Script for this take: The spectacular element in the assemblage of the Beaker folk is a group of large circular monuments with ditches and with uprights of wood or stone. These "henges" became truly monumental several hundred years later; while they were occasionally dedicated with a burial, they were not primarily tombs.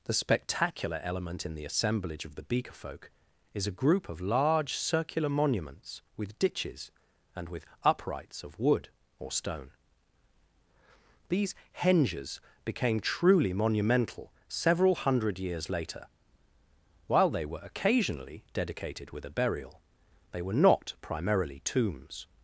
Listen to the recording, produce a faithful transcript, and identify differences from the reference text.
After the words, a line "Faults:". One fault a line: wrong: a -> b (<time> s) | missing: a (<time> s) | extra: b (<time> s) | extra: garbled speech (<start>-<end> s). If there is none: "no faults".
The spectacular element in the assemblage of the Beaker folk is a group of large circular monuments with ditches and with uprights of wood or stone. These "henges" became truly monumental several hundred years later; while they were occasionally dedicated with a burial, they were not primarily tombs.
Faults:
no faults